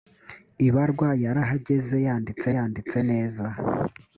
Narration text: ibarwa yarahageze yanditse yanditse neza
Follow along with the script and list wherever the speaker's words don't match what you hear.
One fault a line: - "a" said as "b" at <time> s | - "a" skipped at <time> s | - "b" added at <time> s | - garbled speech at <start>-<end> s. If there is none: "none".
none